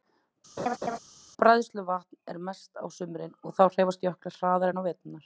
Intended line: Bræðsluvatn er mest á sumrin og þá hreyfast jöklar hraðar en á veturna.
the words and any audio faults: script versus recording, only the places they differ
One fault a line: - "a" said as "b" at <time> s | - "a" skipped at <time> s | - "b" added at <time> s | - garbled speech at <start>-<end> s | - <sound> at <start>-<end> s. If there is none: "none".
- laugh at 0.6-1.0 s